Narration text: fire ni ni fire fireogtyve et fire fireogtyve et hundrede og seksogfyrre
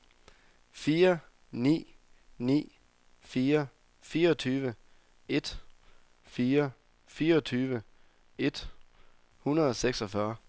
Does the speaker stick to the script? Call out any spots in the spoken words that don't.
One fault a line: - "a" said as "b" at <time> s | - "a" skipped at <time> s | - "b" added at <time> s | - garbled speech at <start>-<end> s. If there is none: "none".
none